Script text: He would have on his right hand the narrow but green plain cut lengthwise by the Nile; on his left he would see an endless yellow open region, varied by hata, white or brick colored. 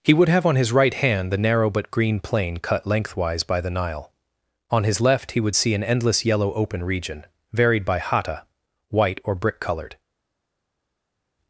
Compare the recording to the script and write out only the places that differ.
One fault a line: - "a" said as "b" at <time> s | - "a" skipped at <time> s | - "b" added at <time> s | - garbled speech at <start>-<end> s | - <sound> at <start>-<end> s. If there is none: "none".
none